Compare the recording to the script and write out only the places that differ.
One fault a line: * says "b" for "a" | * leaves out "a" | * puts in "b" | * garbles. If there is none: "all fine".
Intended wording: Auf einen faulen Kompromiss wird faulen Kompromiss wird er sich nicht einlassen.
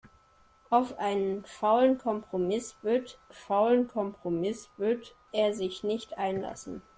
all fine